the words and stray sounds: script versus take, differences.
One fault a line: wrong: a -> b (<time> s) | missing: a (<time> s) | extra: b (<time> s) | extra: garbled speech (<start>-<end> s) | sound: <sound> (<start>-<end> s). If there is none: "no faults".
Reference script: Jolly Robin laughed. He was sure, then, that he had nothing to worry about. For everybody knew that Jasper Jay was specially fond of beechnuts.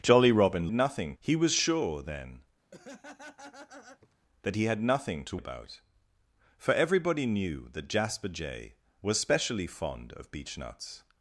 wrong: laughed -> nothing (0.7 s)
sound: laugh (2.7-4.1 s)
missing: worry (5.4 s)